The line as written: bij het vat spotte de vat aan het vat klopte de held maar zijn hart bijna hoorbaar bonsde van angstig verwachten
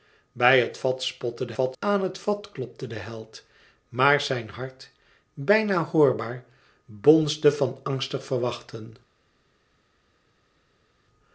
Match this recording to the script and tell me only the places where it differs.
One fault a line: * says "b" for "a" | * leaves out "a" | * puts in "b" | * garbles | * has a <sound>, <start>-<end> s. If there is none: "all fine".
all fine